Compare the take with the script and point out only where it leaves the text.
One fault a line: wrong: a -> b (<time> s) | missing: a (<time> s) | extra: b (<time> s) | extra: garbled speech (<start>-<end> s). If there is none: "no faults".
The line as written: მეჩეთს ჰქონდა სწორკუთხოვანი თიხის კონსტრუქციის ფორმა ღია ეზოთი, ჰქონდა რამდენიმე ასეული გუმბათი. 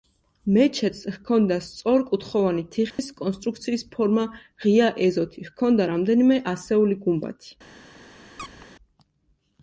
no faults